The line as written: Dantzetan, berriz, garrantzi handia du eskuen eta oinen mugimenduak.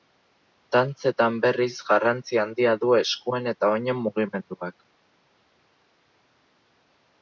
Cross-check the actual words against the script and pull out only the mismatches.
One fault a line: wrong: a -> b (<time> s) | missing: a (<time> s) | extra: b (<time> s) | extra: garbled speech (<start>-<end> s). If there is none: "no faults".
no faults